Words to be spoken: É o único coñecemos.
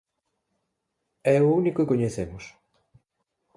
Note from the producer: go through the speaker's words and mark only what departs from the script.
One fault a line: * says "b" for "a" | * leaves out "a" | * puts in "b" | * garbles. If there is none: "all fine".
all fine